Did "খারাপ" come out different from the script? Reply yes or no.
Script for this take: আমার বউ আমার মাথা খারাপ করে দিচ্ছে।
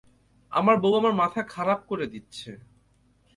no